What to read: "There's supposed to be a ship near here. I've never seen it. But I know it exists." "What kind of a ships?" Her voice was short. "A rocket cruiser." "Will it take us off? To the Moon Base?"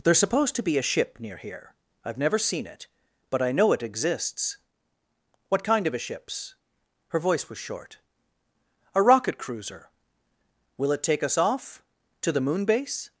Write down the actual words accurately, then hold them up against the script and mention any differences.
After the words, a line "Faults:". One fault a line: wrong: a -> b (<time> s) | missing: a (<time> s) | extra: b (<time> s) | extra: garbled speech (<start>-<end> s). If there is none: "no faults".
"There's supposed to be a ship near here. I've never seen it. But I know it exists." "What kind of a ships?" Her voice was short. "A rocket cruiser." "Will it take us off? To the Moon Base?"
Faults:
no faults